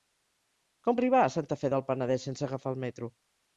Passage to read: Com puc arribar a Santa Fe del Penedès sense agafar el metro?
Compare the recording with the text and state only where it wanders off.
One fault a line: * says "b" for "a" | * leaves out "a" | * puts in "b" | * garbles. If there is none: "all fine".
* leaves out "puc"